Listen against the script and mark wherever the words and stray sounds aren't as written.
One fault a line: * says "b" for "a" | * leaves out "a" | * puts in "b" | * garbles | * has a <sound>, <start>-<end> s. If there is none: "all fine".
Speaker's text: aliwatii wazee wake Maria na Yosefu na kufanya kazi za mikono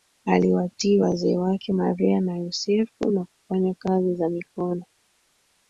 all fine